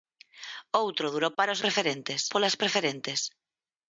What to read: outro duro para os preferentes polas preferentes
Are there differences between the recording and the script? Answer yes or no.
no